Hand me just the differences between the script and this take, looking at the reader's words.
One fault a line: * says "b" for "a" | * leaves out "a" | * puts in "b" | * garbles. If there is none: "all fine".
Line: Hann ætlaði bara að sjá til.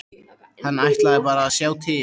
all fine